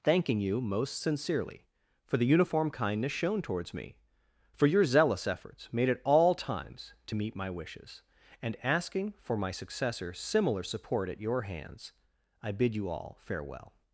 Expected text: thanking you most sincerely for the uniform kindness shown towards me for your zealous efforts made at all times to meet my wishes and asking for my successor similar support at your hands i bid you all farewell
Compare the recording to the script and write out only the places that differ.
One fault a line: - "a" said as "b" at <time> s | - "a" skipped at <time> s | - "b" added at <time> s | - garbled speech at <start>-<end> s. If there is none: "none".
none